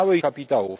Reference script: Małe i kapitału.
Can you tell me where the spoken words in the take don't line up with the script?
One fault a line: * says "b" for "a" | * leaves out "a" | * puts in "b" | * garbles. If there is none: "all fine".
all fine